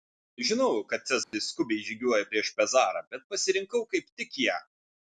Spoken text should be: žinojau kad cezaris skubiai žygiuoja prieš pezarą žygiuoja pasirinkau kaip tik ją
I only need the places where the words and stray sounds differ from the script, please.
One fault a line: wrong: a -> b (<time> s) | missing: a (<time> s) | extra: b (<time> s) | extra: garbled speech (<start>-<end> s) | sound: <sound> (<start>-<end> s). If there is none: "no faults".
sound: dropout (1.2-1.3 s)
wrong: žygiuoja -> bet (3.1 s)